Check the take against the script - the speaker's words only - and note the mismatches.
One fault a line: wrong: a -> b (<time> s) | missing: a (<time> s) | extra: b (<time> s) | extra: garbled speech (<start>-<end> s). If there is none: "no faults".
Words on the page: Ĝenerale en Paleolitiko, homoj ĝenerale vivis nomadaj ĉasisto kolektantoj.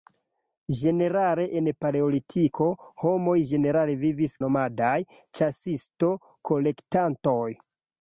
no faults